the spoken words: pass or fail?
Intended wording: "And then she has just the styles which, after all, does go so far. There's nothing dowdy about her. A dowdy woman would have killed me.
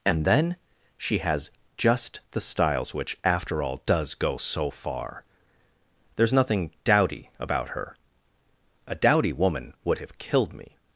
pass